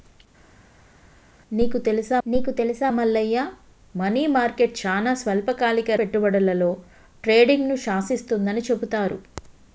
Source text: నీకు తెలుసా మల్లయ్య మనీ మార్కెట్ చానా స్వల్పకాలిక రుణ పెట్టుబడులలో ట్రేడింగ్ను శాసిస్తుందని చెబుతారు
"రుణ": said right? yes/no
no